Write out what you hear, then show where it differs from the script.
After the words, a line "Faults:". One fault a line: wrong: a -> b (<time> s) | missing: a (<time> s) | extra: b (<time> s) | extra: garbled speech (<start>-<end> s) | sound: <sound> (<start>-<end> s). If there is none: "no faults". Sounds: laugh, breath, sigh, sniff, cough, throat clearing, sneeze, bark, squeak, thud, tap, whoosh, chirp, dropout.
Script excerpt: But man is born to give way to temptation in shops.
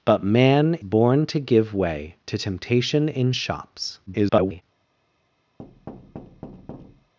But man born to give way to temptation in shops. [garbled]
Faults:
missing: is (0.8 s)
extra: garbled speech (4.1-4.6 s)
sound: thud (5.6-7.1 s)